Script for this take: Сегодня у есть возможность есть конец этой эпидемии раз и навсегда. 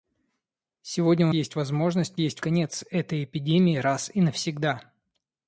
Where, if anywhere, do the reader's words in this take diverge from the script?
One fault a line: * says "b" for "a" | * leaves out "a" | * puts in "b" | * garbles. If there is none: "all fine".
all fine